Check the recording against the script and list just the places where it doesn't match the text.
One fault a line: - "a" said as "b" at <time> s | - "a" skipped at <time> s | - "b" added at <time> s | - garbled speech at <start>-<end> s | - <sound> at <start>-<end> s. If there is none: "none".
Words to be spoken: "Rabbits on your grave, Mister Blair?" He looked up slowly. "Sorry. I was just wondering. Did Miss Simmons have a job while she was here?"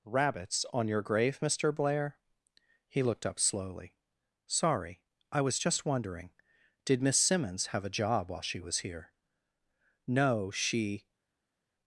- "No she" added at 10.1 s